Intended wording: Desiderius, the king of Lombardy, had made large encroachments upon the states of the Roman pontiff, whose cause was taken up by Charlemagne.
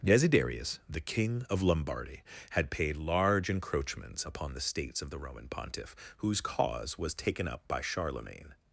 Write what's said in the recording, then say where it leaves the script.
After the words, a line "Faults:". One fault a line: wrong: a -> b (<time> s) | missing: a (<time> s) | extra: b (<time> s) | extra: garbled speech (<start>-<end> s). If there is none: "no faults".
Desiderius, the king of Lombardy, had paid large encroachments upon the states of the Roman pontiff, whose cause was taken up by Charlemagne.
Faults:
wrong: made -> paid (2.7 s)